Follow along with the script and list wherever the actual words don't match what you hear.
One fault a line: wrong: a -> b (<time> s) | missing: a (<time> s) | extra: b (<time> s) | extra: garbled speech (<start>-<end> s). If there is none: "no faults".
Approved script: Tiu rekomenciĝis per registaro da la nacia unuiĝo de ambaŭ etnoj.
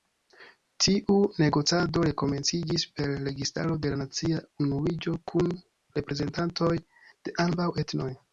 extra: negocado (1.4 s)
wrong: da -> de (3.8 s)
extra: kun reprezentantoj (5.3 s)